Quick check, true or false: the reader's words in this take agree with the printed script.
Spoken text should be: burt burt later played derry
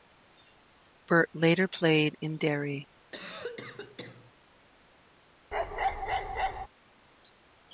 false